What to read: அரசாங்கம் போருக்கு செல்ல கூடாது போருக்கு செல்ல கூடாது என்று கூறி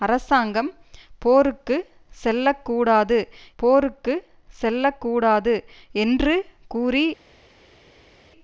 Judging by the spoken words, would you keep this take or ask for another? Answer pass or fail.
pass